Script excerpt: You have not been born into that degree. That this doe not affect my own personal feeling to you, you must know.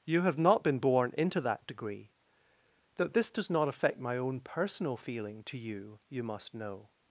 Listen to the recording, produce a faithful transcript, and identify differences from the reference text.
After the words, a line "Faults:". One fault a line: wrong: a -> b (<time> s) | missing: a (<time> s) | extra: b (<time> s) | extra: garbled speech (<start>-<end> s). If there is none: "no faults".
You have not been born into that degree. That this does not affect my own personal feeling to you, you must know.
Faults:
wrong: doe -> does (3.3 s)